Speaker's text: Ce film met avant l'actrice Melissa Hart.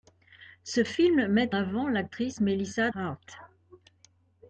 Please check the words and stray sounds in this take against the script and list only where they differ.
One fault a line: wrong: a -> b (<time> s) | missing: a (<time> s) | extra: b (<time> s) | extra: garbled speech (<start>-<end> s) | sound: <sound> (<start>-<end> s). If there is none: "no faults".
no faults